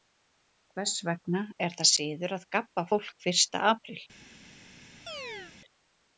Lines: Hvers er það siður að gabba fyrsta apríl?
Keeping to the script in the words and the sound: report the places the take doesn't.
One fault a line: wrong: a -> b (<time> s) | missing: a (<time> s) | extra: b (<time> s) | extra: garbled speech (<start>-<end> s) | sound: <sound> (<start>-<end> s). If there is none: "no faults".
extra: vegna (1.1 s)
extra: fólk (2.9 s)
sound: chirp (5.1-5.6 s)